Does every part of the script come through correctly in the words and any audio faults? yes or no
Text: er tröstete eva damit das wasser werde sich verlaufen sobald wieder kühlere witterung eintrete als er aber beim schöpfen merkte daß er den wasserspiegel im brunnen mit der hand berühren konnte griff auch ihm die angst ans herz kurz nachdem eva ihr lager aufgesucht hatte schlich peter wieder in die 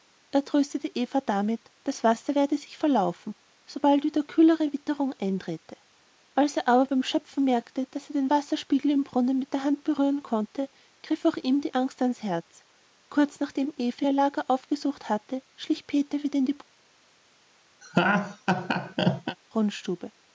no